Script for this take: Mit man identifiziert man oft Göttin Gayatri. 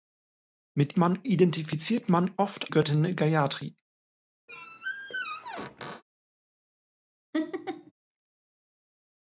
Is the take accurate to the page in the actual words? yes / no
yes